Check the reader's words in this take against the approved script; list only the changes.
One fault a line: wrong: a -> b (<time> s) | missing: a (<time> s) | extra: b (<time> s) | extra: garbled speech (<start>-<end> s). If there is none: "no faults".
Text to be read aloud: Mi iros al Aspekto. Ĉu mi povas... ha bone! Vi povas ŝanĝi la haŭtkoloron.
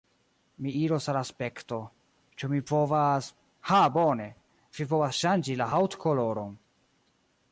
no faults